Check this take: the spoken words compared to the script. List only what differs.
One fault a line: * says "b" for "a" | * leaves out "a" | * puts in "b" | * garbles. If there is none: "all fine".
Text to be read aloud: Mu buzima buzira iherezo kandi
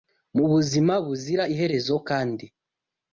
all fine